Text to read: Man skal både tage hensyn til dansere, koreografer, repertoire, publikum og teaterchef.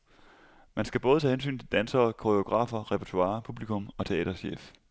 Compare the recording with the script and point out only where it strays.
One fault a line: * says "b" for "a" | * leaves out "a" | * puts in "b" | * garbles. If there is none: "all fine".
all fine